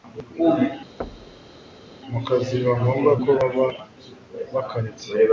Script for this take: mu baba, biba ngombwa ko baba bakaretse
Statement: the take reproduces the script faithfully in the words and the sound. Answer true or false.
false